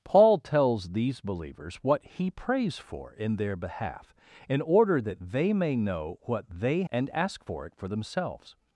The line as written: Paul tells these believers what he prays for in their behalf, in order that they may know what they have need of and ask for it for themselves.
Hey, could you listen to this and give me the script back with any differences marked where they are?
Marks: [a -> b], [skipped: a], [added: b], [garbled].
Paul tells these believers what he prays for in their behalf, in order that they may know what they [skipped: have need of] and ask for it for themselves.